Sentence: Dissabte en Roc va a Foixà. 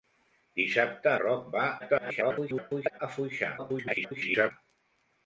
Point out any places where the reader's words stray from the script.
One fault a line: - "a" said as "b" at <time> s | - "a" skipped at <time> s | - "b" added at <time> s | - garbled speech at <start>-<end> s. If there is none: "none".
- "en" skipped at 1.1 s
- garbled speech at 1.8-3.0 s
- garbled speech at 3.6-4.5 s